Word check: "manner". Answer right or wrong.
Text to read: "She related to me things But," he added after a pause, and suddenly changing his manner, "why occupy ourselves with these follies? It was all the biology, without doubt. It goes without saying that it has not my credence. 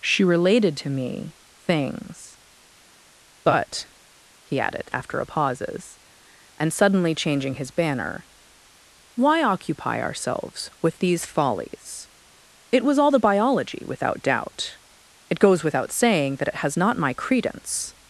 wrong